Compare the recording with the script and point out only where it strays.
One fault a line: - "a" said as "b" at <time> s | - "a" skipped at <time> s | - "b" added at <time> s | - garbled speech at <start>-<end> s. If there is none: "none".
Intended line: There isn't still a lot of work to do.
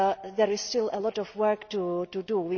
- "isn't" said as "is" at 0.5 s